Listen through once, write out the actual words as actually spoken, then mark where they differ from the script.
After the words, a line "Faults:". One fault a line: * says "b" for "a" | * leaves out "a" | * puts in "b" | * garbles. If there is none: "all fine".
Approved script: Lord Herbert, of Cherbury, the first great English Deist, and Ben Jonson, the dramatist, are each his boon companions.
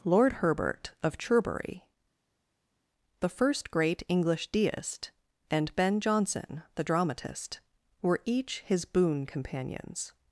Lord Herbert, of Cherbury, the first great English Deist, and Ben Jonson, the dramatist, were each his boon companions.
Faults:
* says "were" for "are"